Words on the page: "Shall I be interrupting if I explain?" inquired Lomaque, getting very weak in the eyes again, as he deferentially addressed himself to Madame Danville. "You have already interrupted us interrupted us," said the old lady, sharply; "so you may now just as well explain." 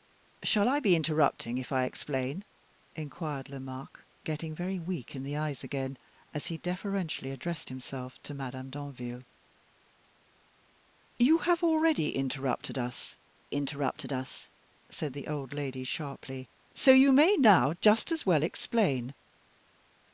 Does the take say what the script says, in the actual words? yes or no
yes